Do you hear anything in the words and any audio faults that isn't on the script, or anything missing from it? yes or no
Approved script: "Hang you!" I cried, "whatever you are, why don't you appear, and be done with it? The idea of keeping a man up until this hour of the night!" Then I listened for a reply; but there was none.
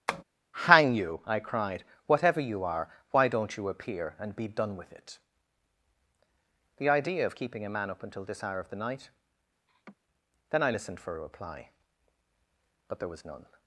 yes